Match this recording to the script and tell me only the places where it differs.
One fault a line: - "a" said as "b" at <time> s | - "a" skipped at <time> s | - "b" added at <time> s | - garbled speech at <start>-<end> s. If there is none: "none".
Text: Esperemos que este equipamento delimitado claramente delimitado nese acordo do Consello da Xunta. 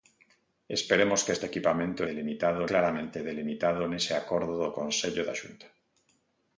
none